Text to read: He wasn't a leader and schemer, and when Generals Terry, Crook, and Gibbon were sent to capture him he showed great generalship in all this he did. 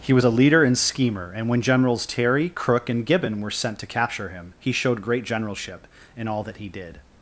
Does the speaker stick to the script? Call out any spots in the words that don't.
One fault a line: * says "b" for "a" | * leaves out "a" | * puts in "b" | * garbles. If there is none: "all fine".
* says "was" for "wasn't"
* says "that" for "this"